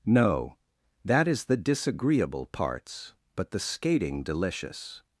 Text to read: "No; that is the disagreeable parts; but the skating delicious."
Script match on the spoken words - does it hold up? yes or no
yes